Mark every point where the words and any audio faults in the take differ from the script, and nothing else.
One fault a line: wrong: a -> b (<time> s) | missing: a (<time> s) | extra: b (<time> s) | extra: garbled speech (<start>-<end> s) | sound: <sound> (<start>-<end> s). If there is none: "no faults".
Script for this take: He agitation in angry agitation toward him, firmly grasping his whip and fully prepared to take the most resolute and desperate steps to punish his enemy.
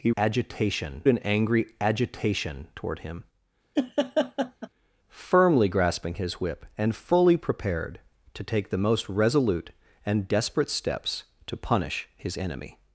sound: laugh (3.8-4.7 s)